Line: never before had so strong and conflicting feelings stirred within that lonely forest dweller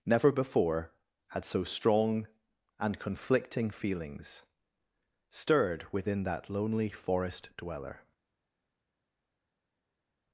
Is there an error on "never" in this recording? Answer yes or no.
no